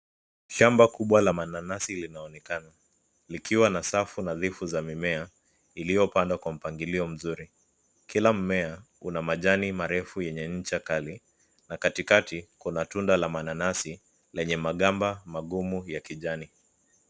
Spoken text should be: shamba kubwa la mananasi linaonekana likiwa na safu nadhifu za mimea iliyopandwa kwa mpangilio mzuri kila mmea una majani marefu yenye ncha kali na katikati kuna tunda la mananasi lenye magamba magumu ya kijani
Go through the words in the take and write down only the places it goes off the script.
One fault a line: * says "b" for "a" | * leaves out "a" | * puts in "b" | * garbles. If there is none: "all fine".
all fine